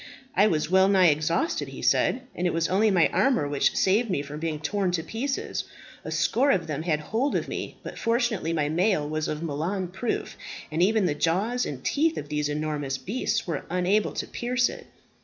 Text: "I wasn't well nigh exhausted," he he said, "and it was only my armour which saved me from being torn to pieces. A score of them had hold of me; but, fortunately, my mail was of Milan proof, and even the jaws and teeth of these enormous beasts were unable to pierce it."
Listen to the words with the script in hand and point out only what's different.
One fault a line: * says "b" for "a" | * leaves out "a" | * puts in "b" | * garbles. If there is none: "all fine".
* says "was" for "wasn't"
* leaves out "he"